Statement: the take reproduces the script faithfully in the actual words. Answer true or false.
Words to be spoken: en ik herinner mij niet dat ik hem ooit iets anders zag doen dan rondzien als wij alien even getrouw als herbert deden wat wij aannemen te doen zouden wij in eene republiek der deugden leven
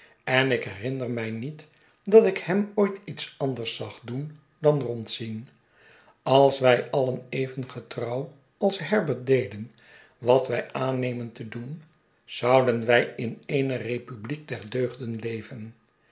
true